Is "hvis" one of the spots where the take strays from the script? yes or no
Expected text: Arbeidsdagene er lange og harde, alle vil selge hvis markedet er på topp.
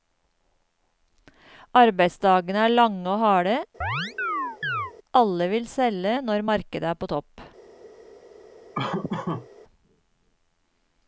yes